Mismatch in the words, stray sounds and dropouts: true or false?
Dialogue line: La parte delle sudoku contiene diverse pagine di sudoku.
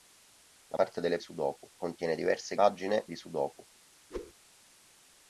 true